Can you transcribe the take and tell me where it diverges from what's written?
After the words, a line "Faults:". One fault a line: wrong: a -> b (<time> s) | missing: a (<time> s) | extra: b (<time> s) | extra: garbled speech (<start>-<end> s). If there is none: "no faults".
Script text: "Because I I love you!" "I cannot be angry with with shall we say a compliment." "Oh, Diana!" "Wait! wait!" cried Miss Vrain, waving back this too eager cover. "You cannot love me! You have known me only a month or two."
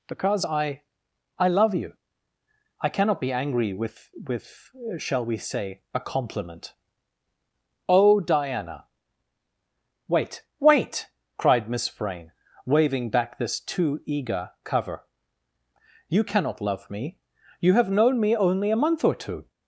"Because I I love you!" "I cannot be angry with with shall we say a compliment." "Oh, Diana!" "Wait! wait!" cried Miss Vrain, waving back this too eager cover. "You cannot love me! You have known me only a month or two."
Faults:
no faults